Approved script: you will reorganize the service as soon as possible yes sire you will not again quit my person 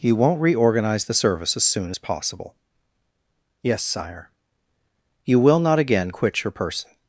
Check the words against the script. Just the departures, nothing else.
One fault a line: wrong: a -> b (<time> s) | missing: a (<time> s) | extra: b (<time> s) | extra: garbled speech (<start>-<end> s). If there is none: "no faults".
wrong: will -> won't (0.1 s)
wrong: my -> your (6.4 s)